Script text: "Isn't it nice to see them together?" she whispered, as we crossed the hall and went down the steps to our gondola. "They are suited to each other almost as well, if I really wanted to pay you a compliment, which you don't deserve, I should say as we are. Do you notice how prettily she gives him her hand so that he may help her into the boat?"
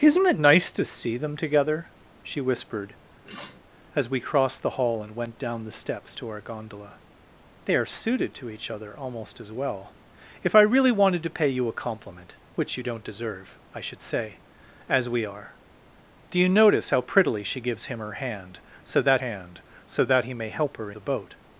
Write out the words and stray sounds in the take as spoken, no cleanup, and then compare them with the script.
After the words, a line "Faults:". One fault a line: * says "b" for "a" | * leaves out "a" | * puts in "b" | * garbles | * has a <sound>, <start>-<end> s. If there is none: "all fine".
"Isn't it nice to see them together?" she whispered, as we crossed the hall and went down the steps to our gondola. "They are suited to each other almost as well, if I really wanted to pay you a compliment, which you don't deserve, I should say as we are. Do you notice how prettily she gives him her hand so that hand so that he may help her the boat?"
Faults:
* has a sniff, 3.2-3.6 s
* puts in "hand so that"
* leaves out "into"